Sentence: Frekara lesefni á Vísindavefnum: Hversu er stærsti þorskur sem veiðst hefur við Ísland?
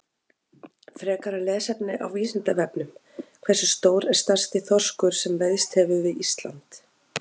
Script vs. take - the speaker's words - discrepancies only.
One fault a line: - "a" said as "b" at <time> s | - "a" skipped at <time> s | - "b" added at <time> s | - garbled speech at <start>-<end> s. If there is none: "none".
- "stór" added at 3.8 s